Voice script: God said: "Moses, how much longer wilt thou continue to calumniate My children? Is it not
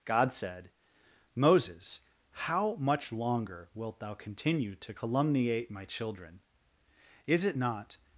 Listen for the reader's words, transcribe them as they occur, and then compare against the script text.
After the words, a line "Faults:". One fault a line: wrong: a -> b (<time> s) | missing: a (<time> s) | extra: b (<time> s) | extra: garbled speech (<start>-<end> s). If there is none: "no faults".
God said: "Moses, how much longer wilt thou continue to calumniate My children? Is it not
Faults:
no faults